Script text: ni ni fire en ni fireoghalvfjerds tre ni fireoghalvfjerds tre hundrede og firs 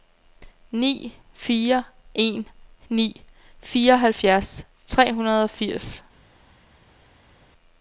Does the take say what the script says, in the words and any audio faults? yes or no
no